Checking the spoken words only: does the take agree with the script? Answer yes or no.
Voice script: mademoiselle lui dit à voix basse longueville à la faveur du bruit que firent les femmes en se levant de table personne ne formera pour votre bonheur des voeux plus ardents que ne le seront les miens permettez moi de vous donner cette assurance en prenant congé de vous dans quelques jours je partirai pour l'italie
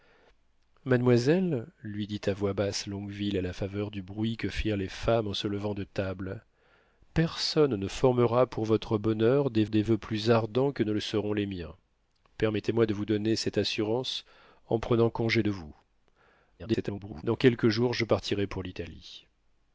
no